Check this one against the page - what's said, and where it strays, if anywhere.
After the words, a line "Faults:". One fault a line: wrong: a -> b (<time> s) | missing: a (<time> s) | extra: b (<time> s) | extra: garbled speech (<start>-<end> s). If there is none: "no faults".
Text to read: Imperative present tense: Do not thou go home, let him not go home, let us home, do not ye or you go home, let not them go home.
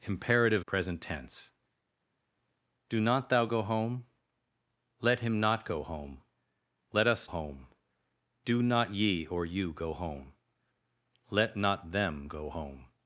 Imperative present tense: Do not thou go home, let him not go home, let us home, do not ye or you go home, let not them go home.
Faults:
no faults